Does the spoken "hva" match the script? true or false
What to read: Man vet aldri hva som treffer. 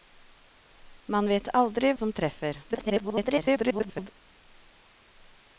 false